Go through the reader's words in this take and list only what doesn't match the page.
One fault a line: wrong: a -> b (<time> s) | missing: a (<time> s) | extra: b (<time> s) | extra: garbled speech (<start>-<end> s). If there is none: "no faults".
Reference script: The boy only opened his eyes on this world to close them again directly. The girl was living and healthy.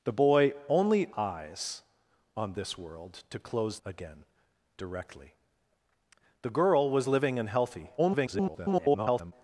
missing: opened his (1.1 s)
missing: them (3.8 s)
extra: garbled speech (8.0-9.3 s)